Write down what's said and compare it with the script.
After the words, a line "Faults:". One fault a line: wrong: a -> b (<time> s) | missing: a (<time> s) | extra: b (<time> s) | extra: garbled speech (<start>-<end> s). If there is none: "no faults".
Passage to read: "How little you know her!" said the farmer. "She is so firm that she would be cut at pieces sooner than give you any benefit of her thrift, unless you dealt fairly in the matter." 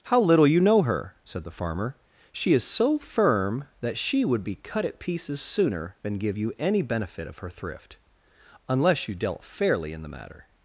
"How little you know her!" said the farmer. "She is so firm that she would be cut at pieces sooner than give you any benefit of her thrift, unless you dealt fairly in the matter."
Faults:
no faults